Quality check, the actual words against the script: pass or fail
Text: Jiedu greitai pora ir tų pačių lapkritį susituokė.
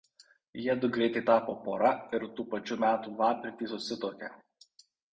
fail